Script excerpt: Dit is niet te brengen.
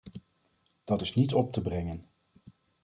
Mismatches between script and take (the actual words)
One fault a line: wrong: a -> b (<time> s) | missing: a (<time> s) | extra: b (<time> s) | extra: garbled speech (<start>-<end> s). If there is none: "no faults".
wrong: Dit -> Dat (0.8 s)
extra: op (1.3 s)